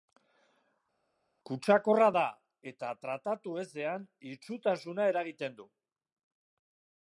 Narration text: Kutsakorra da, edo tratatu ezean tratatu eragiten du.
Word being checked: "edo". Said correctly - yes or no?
no